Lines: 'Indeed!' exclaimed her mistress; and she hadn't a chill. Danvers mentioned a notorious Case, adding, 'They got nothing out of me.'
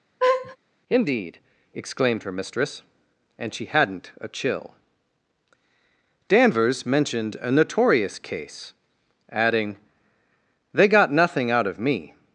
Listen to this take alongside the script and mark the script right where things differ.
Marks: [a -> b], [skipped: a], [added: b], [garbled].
'Indeed!' exclaimed her mistress; and she hadn't a chill. Danvers mentioned a notorious Case, adding, 'They got nothing out of me.'